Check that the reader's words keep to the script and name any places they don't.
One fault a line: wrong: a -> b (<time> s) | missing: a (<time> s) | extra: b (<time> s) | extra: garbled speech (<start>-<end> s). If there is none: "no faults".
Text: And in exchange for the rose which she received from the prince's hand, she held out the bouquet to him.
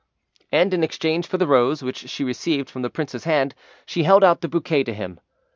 no faults